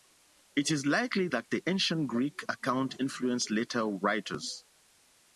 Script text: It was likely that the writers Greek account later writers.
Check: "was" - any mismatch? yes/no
yes